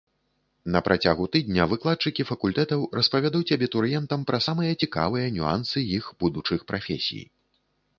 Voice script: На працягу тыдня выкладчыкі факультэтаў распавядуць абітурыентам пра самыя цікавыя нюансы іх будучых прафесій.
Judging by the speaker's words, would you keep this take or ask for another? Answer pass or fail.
pass